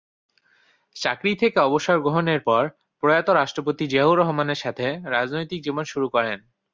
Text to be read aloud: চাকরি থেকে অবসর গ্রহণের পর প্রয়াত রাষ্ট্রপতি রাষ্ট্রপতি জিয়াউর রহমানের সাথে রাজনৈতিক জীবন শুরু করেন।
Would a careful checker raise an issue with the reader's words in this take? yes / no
yes